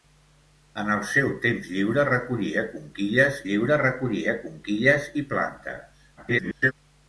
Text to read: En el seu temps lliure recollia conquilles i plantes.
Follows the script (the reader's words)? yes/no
no